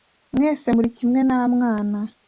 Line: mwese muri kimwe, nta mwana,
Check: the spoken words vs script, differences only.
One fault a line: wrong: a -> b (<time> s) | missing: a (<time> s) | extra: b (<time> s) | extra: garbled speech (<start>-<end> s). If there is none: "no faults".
no faults